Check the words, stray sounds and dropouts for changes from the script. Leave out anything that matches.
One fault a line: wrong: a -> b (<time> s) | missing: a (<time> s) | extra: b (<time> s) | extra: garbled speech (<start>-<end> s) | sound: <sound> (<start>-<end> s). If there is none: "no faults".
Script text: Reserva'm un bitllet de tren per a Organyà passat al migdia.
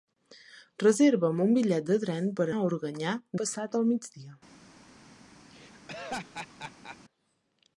sound: laugh (5.5-7.0 s)